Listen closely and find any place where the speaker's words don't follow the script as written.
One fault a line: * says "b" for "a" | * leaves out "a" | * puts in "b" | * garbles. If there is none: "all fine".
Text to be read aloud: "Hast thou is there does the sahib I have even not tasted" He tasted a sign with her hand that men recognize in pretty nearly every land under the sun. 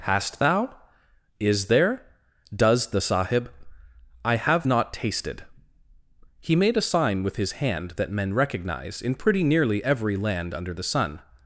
* leaves out "even"
* says "made" for "tasted"
* says "his" for "her"